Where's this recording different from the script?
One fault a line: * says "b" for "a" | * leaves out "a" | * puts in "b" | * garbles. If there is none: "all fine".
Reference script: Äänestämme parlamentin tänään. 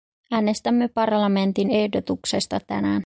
* puts in "ehdotuksesta"